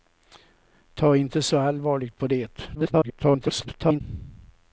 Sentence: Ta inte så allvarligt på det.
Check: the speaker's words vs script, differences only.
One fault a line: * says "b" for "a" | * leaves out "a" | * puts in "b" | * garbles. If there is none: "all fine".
* garbles